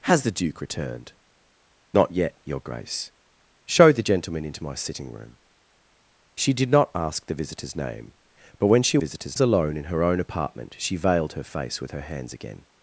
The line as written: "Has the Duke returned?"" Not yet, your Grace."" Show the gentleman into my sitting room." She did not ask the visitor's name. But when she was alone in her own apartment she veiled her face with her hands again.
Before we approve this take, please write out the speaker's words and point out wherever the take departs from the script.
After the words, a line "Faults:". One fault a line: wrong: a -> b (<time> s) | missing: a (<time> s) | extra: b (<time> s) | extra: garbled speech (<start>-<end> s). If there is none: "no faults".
"Has the Duke returned?"" Not yet, your Grace."" Show the gentleman into my sitting room." She did not ask the visitor's name. But when she visitor's alone in her own apartment she veiled her face with her hands again.
Faults:
wrong: was -> visitor's (9.0 s)